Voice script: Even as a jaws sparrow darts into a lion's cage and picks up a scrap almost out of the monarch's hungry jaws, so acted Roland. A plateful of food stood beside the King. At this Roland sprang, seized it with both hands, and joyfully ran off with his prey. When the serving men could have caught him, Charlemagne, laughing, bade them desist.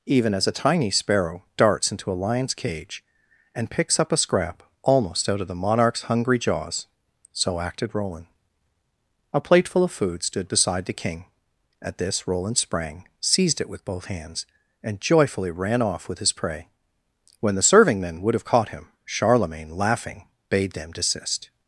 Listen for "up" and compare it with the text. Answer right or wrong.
right